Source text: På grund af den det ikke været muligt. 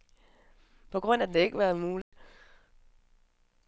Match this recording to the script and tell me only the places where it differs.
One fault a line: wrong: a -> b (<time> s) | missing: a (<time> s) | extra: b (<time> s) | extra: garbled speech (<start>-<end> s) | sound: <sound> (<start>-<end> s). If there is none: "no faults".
sound: dropout (2.0-2.1 s)